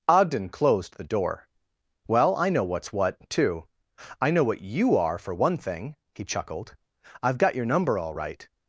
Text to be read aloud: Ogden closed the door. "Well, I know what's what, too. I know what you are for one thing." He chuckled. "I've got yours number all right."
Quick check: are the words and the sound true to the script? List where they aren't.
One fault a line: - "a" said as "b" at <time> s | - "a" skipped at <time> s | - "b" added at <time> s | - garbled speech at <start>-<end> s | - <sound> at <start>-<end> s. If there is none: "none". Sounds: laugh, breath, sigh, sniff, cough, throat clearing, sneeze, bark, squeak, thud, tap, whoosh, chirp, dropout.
- "yours" said as "your" at 7.5 s